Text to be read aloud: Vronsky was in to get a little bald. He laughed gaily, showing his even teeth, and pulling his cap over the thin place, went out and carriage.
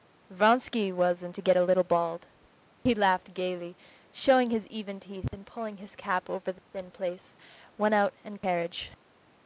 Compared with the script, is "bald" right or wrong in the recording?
right